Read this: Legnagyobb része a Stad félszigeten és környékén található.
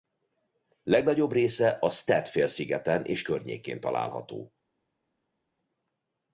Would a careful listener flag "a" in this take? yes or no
no